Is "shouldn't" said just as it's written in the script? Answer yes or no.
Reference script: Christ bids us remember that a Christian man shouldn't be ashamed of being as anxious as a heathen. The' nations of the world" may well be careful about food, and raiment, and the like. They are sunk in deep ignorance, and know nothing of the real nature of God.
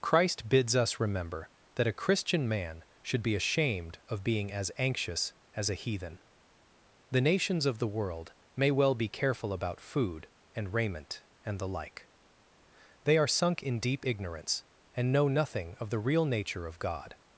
no